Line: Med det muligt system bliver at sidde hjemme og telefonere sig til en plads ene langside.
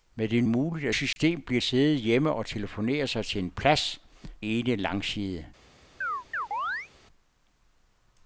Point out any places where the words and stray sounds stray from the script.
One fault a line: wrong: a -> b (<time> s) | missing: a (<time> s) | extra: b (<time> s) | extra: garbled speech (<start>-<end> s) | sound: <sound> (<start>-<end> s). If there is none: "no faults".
sound: dropout (1.1-1.2 s)
sound: chirp (6.0-6.9 s)